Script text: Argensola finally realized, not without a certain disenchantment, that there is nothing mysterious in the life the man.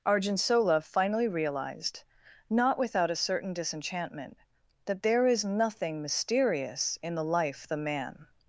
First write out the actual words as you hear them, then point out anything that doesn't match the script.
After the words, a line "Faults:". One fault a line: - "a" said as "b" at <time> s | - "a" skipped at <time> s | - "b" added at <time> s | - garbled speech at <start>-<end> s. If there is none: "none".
Argensola finally realized, not without a certain disenchantment, that there is nothing mysterious in the life the man.
Faults:
none